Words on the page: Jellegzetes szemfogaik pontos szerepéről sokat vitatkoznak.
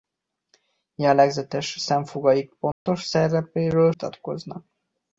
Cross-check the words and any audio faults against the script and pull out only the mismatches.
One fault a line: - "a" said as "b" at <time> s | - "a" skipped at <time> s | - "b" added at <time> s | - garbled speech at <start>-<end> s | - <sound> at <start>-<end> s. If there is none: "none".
- dropout at 2.7-2.9 s
- "sokat" skipped at 3.9 s